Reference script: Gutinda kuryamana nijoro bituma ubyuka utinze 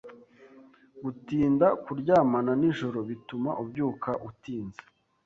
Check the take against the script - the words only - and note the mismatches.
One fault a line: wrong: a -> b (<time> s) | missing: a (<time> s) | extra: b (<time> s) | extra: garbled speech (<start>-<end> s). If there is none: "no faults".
no faults